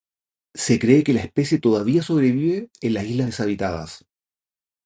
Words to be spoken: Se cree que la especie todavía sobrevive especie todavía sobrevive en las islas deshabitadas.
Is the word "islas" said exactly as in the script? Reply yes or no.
yes